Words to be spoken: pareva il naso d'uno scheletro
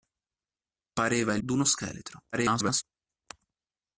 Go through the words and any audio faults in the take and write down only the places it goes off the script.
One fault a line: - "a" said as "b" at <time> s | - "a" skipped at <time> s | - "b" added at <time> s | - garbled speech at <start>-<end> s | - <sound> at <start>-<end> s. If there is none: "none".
- "naso" skipped at 1.4 s
- garbled speech at 2.3-2.8 s